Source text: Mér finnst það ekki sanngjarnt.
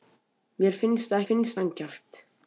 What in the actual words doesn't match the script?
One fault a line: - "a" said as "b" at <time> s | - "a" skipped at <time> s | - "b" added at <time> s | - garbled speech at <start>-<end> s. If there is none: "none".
- "ekki" said as "finnst" at 1.3 s